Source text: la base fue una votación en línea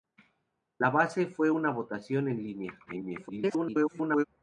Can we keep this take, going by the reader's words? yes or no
no